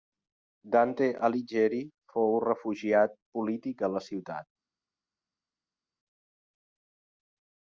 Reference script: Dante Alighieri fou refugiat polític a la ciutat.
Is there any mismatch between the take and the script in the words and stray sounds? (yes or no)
no